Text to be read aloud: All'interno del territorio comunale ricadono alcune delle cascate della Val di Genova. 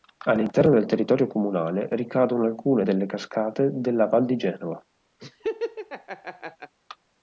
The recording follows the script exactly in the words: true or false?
true